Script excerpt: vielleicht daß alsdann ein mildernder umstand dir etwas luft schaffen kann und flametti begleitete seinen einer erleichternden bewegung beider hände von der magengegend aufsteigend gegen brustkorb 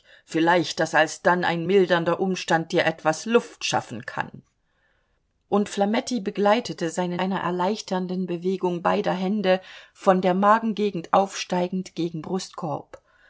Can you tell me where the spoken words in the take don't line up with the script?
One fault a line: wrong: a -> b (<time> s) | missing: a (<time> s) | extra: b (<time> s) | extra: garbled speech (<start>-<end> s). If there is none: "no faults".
no faults